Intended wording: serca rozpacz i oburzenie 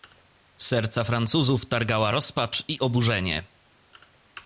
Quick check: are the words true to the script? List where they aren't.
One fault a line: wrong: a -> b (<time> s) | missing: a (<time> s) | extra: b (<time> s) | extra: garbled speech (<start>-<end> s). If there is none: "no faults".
extra: francuzów targała (1.0 s)